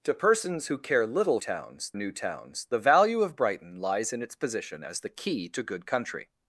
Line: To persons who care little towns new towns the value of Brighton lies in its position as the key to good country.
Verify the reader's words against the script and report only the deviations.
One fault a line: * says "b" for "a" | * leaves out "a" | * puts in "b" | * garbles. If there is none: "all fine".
all fine